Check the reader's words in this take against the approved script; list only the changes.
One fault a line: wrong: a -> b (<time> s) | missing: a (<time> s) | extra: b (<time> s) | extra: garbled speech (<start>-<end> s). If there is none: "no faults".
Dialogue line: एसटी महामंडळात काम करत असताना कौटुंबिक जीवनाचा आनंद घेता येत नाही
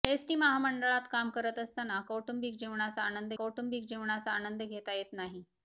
extra: कौटुंबिक जीवनाचा आनंद (3.4 s)